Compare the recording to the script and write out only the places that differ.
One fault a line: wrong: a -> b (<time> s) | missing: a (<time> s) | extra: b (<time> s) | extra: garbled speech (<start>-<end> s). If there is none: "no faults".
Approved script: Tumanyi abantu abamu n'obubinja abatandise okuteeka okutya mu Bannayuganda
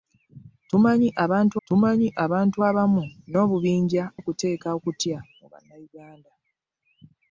extra: tumanyi abantu (1.7 s)
missing: abatandise (4.0 s)